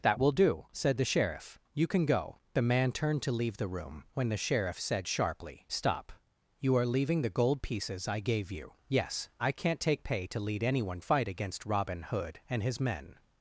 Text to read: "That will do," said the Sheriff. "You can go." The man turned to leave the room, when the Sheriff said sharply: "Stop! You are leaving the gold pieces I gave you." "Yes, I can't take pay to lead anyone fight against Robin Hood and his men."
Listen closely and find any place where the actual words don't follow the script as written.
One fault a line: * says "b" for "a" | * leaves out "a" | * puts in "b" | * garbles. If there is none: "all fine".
all fine